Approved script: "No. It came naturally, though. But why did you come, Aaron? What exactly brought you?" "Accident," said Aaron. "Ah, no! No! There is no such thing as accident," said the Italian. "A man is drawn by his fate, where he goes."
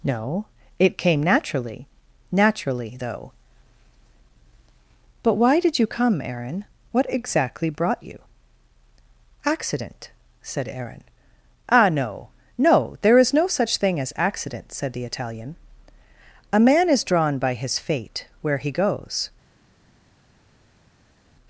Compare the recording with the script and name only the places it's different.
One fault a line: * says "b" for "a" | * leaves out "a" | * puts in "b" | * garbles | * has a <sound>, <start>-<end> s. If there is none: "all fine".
* puts in "naturally"